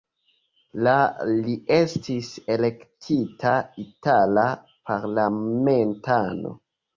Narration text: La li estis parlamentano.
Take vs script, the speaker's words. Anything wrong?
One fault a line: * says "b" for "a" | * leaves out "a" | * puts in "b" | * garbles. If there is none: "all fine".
* puts in "elektita itala"